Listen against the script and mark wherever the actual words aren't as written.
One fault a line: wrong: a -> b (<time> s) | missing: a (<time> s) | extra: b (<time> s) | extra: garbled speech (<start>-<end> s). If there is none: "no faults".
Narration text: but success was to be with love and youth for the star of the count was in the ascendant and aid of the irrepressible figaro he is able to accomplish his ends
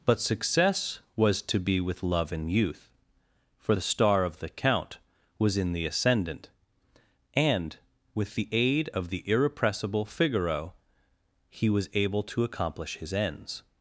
extra: with the (8.1 s)
wrong: is -> was (11.7 s)